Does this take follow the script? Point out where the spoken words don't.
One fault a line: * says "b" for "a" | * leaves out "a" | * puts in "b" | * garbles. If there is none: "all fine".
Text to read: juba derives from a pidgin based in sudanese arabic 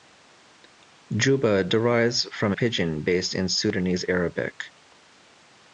* leaves out "a"